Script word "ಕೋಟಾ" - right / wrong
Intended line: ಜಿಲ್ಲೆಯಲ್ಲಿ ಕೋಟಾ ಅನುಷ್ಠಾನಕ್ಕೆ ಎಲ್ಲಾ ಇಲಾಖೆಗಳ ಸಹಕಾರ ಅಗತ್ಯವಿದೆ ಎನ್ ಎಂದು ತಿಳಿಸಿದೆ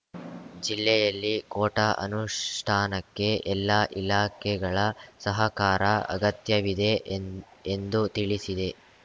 right